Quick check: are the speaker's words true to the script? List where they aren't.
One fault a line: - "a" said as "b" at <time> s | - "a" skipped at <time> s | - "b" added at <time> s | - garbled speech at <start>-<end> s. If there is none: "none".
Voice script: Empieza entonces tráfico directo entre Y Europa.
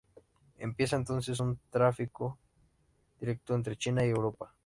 - "un" added at 1.4 s
- "China" added at 3.8 s